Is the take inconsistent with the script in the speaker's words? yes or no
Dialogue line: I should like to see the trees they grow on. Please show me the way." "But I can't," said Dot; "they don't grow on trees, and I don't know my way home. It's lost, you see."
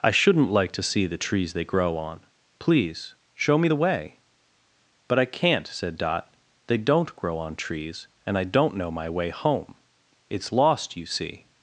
yes